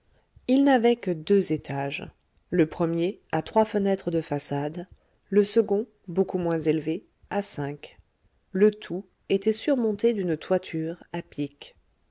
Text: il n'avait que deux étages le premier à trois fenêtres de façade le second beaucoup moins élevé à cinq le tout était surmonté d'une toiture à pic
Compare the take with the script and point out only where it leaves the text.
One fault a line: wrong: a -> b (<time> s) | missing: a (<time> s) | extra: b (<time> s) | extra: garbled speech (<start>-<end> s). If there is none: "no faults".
no faults